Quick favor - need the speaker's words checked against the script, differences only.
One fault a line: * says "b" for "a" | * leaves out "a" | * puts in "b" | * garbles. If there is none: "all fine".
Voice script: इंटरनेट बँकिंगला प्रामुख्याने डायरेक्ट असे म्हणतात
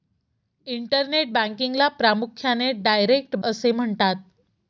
all fine